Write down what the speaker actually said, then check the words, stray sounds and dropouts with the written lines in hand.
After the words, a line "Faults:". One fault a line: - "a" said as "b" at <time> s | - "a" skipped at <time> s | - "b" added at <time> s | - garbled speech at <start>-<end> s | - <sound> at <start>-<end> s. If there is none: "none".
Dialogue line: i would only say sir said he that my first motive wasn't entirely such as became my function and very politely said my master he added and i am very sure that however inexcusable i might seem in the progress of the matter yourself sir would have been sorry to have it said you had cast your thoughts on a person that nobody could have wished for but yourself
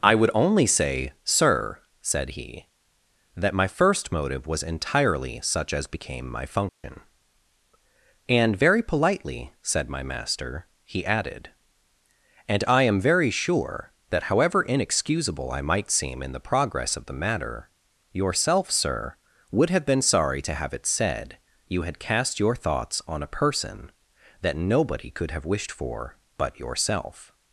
i would only say sir said he that my first motive was entirely such as became my function and very politely said my master he added and i am very sure that however inexcusable i might seem in the progress of the matter yourself sir would have been sorry to have it said you had cast your thoughts on a person that nobody could have wished for but yourself
Faults:
- "wasn't" said as "was" at 4.5 s
- dropout at 6.7-6.8 s